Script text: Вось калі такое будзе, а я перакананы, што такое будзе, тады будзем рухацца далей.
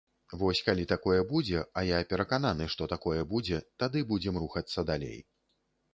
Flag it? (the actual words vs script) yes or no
no